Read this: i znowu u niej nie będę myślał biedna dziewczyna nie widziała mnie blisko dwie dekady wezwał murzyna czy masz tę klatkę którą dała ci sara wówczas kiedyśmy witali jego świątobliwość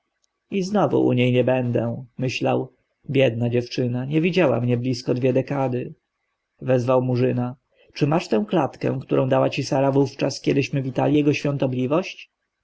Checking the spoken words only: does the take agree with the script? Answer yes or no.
yes